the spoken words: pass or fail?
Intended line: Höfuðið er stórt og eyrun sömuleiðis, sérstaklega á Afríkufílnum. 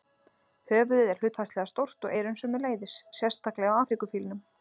fail